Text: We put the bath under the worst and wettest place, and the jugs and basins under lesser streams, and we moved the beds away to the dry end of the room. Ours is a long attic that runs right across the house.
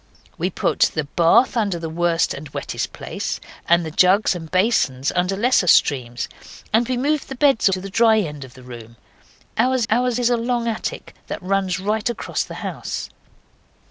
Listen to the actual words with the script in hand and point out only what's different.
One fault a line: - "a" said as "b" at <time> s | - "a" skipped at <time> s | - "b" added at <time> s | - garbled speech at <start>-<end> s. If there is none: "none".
- "away" skipped at 7.7 s
- "ours" added at 9.9 s